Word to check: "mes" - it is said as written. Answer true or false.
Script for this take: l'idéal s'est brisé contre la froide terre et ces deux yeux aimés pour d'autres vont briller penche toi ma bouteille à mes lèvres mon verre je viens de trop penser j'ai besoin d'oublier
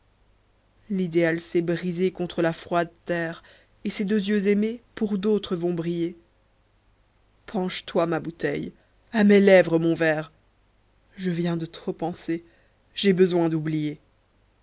true